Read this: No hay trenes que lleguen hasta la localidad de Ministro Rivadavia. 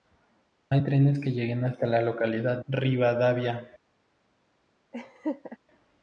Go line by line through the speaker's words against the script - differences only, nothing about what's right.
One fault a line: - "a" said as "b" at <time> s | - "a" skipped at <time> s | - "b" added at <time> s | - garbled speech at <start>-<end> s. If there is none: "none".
- "de Ministro" skipped at 2.6 s